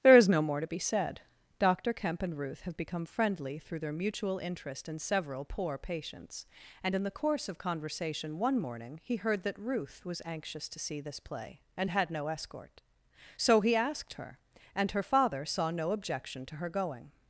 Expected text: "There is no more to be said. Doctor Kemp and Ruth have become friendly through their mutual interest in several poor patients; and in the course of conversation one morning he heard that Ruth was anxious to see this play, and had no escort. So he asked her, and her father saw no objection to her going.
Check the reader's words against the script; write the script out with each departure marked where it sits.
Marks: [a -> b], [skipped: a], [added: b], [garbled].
"There is no more to be said. Doctor Kemp and Ruth have become friendly through their mutual interest in several poor patients; and in the course of conversation one morning he heard that Ruth was anxious to see this play, and had no escort. So he asked her, and her father saw no objection to her going.